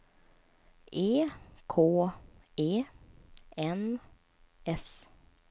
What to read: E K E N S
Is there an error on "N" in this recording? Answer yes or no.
no